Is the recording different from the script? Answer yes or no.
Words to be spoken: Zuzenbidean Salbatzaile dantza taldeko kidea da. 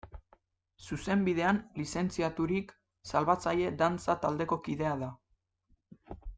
yes